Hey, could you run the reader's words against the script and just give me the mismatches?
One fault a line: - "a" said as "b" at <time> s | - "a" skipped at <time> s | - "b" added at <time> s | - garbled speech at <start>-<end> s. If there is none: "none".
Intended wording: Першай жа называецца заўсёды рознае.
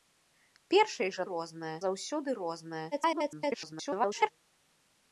- "называецца" said as "рознае" at 1.3 s
- garbled speech at 2.9-4.3 s